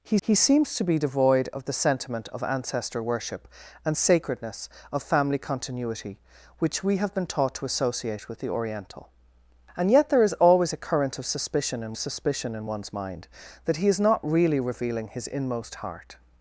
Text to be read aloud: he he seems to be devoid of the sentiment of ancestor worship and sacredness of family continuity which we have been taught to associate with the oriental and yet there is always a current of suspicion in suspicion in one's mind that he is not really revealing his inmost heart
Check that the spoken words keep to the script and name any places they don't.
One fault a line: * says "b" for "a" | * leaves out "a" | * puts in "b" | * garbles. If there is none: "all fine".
all fine